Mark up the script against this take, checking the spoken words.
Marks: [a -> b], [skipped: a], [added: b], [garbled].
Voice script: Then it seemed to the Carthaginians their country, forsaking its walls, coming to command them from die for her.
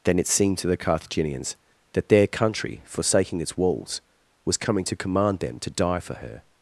Then it seemed to the Carthaginians [added: that] their country, forsaking its walls, [added: was] coming to command them [from -> to] die for her.